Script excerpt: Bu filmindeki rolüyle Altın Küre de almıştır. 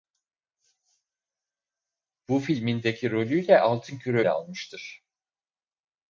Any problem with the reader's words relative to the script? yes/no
no